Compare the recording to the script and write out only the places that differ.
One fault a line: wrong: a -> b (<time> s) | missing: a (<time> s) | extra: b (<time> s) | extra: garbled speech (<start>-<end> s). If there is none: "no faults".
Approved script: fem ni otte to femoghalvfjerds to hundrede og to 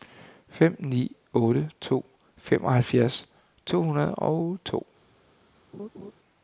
no faults